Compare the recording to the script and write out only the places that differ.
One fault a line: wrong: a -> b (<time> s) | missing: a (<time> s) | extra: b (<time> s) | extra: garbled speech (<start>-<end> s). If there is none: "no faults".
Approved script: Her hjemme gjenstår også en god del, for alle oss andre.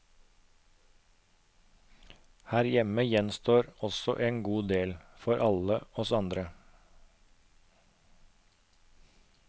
no faults